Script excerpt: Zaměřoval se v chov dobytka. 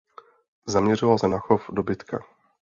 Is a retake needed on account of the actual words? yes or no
yes